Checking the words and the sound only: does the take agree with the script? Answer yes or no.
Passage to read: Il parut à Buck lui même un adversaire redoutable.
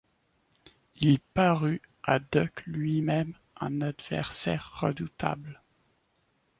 yes